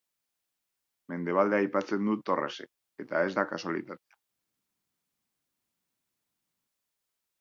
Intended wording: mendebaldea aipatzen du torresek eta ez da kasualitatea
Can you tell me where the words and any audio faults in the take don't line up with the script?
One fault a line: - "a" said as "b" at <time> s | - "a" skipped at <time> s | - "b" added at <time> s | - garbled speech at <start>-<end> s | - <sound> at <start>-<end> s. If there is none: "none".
none